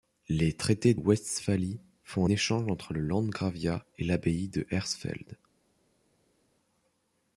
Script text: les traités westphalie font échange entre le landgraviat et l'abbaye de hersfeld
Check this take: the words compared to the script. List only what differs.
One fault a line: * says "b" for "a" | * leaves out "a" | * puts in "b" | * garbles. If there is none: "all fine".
all fine